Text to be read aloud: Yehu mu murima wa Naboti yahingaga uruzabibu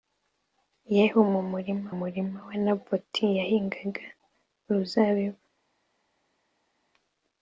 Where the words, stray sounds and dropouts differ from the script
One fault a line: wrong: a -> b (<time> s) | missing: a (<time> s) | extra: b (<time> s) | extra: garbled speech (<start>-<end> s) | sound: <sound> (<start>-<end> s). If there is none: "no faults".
extra: murima (2.0 s)